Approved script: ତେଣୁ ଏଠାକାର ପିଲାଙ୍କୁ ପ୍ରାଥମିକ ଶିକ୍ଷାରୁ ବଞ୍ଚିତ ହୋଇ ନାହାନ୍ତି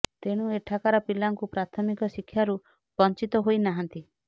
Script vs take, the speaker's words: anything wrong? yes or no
no